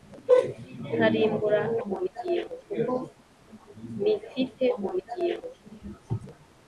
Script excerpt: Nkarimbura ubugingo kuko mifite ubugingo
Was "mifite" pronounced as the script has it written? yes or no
yes